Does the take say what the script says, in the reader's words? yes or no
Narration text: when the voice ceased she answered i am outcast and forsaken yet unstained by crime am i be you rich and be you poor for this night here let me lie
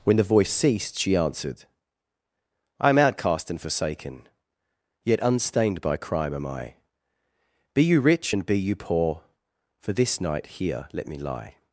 yes